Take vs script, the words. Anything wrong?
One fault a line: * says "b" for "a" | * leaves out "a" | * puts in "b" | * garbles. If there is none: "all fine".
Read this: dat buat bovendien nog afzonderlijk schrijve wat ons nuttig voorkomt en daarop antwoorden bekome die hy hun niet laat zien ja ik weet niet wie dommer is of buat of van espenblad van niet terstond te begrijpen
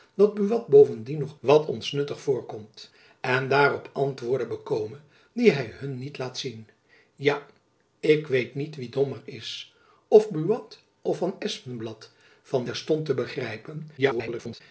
* leaves out "afzonderlijk schrijve"
* leaves out "niet"
* garbles